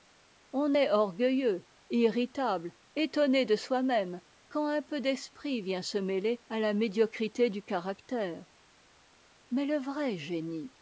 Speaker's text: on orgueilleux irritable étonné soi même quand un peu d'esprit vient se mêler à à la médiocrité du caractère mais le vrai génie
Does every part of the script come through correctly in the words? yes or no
no